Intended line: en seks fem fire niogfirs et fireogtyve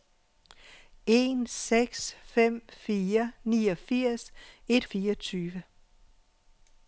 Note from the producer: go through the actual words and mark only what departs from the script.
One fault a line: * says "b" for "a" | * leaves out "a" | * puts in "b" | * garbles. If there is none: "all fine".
all fine